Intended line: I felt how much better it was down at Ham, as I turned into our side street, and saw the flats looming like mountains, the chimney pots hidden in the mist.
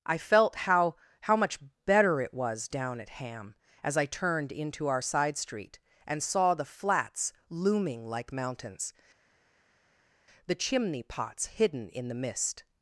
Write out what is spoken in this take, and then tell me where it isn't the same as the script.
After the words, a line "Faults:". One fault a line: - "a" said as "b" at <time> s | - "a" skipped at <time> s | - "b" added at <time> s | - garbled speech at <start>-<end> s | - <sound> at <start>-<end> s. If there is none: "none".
I felt how how much better it was down at Ham, as I turned into our side street, and saw the flats looming like mountains, the chimney pots hidden in the mist.
Faults:
- "how" added at 1.2 s